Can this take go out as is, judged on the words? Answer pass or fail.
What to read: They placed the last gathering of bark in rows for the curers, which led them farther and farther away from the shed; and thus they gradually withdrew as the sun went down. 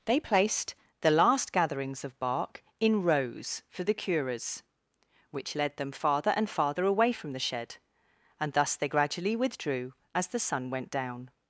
fail